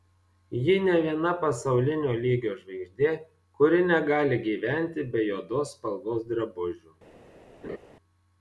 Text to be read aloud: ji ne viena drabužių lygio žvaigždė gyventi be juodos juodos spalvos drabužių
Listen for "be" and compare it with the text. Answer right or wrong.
right